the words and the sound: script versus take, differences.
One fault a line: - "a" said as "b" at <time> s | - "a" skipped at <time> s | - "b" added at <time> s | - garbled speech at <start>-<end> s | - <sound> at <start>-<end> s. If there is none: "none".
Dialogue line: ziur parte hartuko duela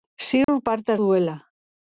- dropout at 0.4-0.5 s
- "hartuko" skipped at 1.0 s